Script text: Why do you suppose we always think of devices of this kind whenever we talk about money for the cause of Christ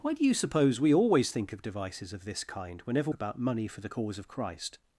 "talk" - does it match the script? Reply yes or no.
no